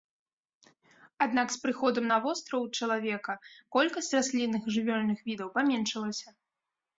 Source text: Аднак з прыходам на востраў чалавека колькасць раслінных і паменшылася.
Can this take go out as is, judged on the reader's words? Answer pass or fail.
fail